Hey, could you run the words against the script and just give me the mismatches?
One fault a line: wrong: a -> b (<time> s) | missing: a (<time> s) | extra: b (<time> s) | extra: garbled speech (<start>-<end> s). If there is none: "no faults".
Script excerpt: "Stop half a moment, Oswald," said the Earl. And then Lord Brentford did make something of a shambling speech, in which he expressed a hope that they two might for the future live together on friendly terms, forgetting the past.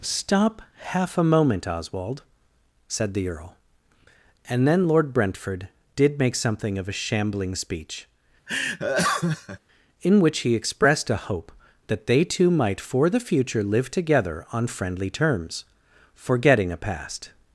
wrong: the -> a (16.7 s)